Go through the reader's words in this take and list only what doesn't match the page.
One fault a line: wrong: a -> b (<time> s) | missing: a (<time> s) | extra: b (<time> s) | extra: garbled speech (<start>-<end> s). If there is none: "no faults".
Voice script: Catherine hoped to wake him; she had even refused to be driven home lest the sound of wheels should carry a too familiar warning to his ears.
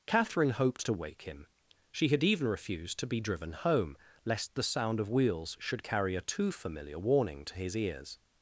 no faults